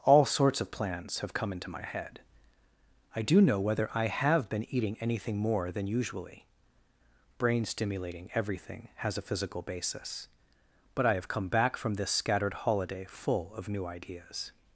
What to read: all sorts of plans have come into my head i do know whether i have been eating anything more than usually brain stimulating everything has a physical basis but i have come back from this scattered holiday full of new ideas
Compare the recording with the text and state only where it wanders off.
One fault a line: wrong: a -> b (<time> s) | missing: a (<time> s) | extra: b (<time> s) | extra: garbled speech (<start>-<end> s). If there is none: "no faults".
no faults